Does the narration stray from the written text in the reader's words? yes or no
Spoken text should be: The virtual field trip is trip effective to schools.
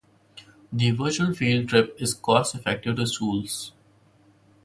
yes